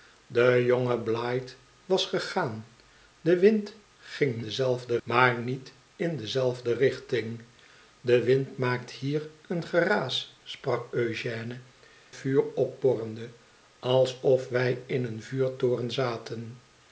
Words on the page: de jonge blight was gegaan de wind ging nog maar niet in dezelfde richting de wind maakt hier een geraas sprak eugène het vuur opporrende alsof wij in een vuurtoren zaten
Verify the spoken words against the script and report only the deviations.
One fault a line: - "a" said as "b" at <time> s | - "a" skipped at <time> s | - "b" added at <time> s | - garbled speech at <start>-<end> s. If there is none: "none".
- "nog" said as "dezelfde" at 4.4 s
- "het" skipped at 11.6 s